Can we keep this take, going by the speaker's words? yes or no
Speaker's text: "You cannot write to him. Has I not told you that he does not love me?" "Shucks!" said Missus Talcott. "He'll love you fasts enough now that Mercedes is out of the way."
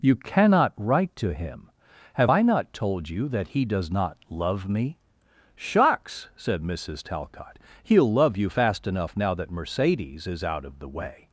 no